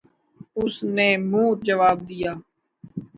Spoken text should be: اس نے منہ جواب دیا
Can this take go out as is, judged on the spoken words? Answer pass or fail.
pass